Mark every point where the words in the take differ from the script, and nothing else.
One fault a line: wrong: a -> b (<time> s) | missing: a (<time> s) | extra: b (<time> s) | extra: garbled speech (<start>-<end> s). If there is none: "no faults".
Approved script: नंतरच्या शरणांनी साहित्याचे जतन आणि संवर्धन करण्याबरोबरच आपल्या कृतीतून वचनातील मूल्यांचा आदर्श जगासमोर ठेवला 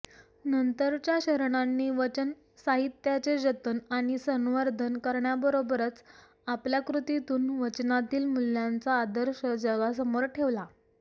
extra: वचन (1.9 s)